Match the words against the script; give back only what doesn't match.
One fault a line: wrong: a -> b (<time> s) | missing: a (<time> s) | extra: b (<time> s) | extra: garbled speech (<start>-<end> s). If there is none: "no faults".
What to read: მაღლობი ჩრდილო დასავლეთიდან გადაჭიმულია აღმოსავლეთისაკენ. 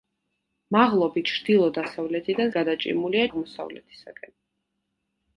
no faults